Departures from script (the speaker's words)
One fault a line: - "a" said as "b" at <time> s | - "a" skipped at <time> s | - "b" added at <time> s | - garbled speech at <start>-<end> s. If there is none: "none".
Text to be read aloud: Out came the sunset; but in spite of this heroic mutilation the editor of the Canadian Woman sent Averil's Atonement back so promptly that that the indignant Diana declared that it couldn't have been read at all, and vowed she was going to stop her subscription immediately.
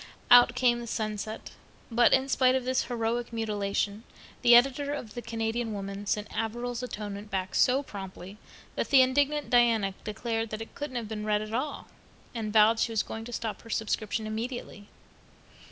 - "that" skipped at 8.9 s